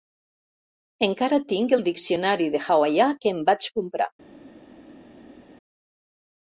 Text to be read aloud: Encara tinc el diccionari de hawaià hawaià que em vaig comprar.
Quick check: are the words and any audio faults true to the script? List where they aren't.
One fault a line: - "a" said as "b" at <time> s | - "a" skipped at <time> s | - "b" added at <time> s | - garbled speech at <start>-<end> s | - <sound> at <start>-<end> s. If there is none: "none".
- "hawaià" skipped at 3.1 s